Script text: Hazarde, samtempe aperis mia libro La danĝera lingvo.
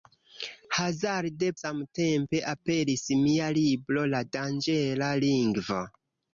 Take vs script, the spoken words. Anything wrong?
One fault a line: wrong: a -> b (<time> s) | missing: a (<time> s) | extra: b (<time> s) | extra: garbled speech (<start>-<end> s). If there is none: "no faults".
no faults